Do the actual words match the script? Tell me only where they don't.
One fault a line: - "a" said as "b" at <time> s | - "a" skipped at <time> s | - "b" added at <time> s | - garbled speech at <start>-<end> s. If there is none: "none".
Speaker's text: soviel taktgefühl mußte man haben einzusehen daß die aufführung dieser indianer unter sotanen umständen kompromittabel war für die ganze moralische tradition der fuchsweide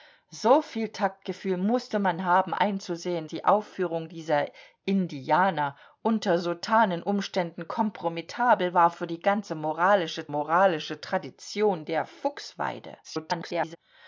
- "daß" skipped at 3.3 s
- "moralische" added at 10.3 s
- garbled speech at 13.0-13.8 s